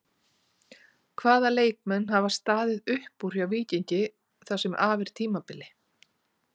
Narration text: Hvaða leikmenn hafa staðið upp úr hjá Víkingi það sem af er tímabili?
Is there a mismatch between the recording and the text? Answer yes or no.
no